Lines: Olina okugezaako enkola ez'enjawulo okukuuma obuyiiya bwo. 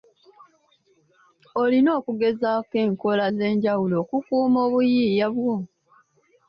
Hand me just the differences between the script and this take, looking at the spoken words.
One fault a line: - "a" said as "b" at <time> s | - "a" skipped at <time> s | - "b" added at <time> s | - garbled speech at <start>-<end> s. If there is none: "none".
none